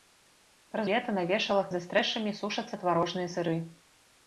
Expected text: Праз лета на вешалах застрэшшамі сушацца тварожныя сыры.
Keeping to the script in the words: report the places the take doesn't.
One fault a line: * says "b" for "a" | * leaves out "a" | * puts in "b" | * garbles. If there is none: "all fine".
all fine